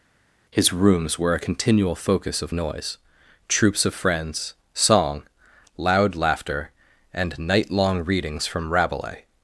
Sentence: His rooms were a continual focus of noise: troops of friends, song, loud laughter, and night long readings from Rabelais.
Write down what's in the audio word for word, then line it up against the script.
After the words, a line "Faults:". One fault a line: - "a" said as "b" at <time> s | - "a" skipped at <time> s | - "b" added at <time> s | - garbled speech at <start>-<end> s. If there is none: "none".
His rooms were a continual focus of noise: troops of friends, song, loud laughter, and night long readings from Rabelais.
Faults:
none